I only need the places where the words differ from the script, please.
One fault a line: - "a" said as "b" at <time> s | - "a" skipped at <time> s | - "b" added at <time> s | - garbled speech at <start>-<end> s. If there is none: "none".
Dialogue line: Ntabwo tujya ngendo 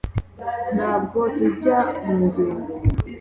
- "mu" added at 2.0 s